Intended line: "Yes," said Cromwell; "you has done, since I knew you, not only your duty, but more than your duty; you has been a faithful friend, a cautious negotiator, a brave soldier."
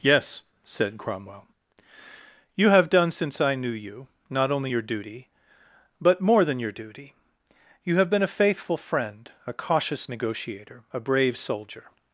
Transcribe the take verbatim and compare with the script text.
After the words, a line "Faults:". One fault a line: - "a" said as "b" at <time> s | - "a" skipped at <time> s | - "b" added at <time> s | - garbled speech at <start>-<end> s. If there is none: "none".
"Yes," said Cromwell; "you have done, since I knew you, not only your duty, but more than your duty; you have been a faithful friend, a cautious negotiator, a brave soldier."
Faults:
- "has" said as "have" at 2.7 s
- "has" said as "have" at 8.0 s